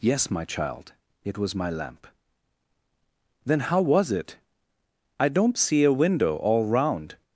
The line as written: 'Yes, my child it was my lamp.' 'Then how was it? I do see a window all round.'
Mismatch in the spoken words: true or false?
true